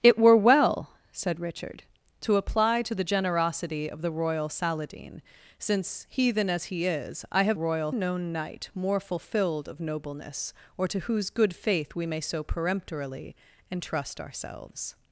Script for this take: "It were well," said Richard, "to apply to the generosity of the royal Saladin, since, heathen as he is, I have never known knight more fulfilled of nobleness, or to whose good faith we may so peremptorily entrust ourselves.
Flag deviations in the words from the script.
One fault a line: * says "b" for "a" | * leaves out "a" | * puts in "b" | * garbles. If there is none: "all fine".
* says "royal" for "never"